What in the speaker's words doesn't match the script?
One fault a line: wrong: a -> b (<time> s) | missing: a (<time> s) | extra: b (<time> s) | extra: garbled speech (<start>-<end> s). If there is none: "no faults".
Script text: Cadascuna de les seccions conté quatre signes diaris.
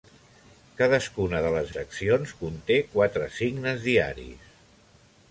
no faults